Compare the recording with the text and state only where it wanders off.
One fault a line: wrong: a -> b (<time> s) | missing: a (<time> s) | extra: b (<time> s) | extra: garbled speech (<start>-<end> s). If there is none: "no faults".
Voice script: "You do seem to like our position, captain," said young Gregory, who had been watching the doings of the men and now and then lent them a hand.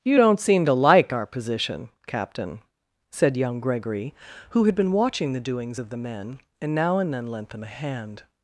wrong: do -> don't (0.1 s)